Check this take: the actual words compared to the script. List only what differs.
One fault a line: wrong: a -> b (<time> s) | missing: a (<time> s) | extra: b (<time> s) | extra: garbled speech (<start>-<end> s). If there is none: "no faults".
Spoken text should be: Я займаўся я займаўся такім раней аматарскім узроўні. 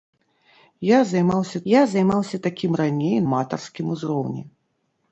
no faults